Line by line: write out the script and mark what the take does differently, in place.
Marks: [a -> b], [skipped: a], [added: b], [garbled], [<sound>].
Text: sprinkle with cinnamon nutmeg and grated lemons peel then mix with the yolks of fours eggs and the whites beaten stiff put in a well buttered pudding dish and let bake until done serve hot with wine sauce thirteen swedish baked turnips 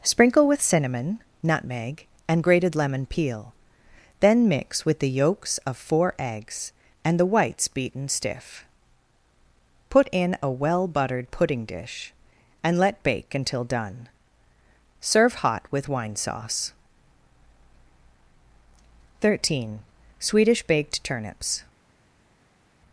sprinkle with cinnamon nutmeg and grated [lemons -> lemon] peel then mix with the yolks of [fours -> four] eggs and the whites beaten stiff put in a well buttered pudding dish and let bake until done serve hot with wine sauce thirteen swedish baked turnips